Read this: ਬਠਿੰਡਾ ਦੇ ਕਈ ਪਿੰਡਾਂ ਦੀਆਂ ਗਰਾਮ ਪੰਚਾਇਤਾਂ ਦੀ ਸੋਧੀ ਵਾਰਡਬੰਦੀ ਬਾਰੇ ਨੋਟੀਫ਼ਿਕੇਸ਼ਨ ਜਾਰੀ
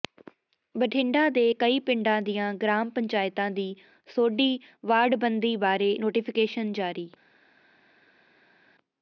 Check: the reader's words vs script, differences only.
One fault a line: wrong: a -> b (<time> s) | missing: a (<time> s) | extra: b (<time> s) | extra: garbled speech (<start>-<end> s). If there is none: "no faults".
no faults